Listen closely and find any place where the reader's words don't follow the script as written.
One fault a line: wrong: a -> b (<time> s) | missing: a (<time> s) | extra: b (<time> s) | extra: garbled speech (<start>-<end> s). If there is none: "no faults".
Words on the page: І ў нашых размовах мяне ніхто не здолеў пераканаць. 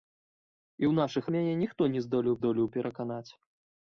missing: размовах (1.3 s)
extra: здолеў (2.4 s)